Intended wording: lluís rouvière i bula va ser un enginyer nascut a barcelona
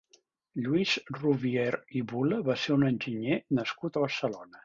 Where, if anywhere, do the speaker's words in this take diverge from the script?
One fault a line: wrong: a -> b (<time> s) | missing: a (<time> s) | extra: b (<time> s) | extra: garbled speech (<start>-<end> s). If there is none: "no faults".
no faults